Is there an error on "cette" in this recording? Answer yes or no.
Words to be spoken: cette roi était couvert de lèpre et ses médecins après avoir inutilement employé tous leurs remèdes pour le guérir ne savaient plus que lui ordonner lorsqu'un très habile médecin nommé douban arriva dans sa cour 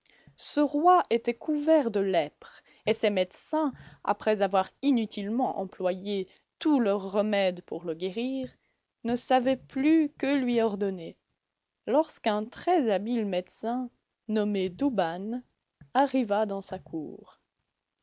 yes